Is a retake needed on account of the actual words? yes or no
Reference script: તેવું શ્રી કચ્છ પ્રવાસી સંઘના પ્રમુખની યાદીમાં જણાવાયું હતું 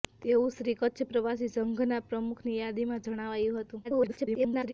yes